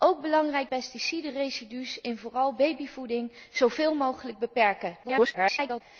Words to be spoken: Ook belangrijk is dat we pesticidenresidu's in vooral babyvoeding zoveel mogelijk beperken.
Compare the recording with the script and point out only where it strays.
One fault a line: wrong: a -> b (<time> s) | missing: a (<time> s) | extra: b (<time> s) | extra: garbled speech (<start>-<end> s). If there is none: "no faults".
missing: is dat we (0.7 s)
extra: garbled speech (5.0-5.8 s)